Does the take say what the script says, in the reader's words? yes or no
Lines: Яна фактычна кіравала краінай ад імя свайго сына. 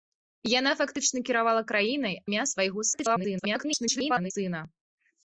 no